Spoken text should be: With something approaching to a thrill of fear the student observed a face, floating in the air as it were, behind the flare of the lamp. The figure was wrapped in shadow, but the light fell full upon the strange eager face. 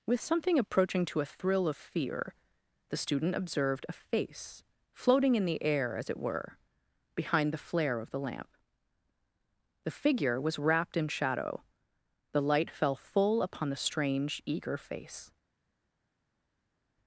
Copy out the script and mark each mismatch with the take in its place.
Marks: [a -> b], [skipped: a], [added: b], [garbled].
With something approaching to a thrill of fear the student observed a face, floating in the air as it were, behind the flare of the lamp. The figure was wrapped in shadow, [skipped: but] the light fell full upon the strange eager face.